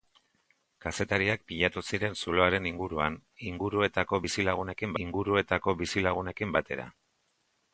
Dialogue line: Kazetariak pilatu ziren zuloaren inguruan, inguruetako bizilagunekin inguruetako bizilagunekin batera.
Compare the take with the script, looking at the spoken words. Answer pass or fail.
pass